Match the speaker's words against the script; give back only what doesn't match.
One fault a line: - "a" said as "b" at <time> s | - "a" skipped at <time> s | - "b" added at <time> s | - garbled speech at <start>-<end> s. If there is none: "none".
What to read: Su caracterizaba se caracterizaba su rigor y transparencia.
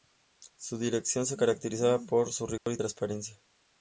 - "caracterizaba" said as "dirección" at 0.8 s
- "por" added at 2.1 s